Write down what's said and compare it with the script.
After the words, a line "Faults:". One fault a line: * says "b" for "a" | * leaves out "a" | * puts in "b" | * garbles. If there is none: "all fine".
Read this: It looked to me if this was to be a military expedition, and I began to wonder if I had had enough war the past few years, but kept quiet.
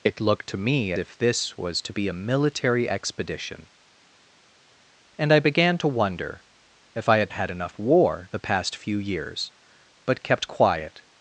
It looked to me if this was to be a military expedition, and I began to wonder if I had had enough war the past few years, but kept quiet.
Faults:
all fine